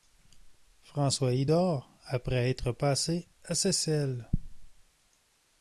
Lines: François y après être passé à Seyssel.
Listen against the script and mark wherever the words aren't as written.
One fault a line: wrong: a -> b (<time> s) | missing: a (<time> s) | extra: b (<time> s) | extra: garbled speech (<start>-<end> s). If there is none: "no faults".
extra: dort (1.4 s)